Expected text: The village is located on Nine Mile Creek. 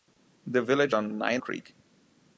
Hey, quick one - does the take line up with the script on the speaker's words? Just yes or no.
no